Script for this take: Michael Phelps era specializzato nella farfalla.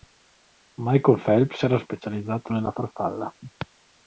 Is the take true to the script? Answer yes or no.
yes